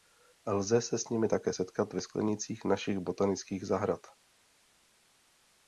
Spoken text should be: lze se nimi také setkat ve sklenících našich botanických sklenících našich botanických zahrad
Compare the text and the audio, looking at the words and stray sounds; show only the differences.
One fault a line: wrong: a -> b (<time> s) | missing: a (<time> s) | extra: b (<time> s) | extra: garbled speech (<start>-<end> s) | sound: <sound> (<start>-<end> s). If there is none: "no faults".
extra: s (1.0 s)
missing: sklenících našich botanických (3.7 s)